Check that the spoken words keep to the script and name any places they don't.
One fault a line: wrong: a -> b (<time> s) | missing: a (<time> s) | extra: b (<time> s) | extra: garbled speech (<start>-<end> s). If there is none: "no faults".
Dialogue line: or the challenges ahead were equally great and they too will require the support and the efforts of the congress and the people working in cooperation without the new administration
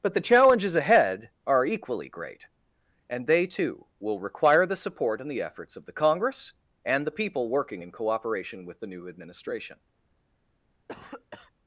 wrong: or -> but (0.0 s)
wrong: were -> are (1.4 s)
wrong: without -> with (8.6 s)